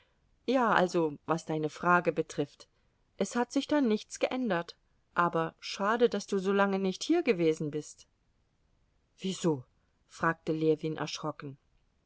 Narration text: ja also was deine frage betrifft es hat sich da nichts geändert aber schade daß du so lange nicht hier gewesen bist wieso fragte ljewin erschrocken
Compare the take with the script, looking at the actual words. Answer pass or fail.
pass